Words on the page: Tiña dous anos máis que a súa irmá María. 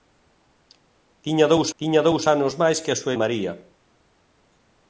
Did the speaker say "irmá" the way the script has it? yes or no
no